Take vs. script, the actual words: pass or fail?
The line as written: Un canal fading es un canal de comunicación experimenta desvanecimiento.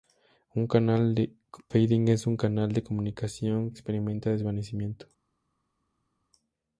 pass